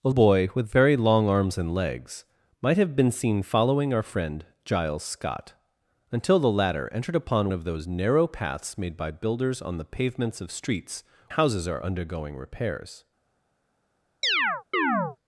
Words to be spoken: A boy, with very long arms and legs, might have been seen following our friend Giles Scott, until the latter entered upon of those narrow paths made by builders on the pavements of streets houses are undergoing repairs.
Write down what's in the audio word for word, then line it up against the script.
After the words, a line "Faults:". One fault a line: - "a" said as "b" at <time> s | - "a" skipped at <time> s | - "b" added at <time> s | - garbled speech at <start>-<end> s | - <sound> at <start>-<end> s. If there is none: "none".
A boy, with very long arms and legs, might have been seen following our friend Giles Scott, until the latter entered upon of those narrow paths made by builders on the pavements of streets houses are undergoing repairs.
Faults:
- chirp at 14.2-15.2 s